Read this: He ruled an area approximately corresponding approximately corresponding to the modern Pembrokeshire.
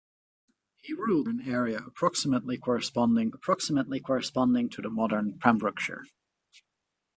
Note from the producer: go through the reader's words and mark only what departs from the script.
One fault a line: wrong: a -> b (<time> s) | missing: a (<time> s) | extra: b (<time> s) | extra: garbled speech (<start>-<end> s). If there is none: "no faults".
no faults